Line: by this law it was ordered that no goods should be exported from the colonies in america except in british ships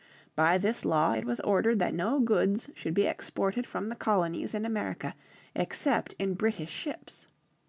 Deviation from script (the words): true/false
false